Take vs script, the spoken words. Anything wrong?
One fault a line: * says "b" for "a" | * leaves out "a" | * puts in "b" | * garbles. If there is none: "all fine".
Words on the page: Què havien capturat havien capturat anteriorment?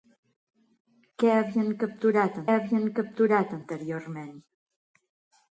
all fine